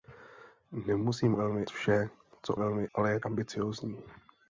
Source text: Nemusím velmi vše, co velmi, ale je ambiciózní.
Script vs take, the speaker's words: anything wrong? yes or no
no